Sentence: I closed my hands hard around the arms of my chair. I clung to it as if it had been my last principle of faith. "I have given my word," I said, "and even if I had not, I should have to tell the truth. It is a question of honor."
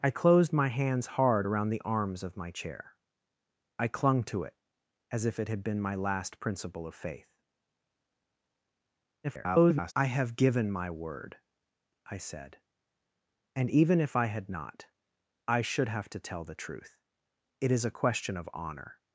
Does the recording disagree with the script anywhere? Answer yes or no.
yes